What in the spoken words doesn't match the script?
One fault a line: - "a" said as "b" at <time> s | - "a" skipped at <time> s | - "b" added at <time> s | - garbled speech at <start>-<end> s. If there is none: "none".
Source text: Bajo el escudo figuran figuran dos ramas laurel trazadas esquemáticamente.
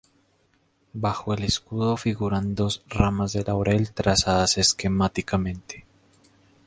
- "figuran" skipped at 2.6 s
- "de" added at 3.3 s